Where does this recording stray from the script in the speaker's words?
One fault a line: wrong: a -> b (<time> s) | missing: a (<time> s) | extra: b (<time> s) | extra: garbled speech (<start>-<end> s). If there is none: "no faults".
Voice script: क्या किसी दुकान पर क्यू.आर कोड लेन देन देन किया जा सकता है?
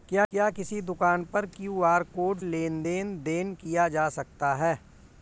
no faults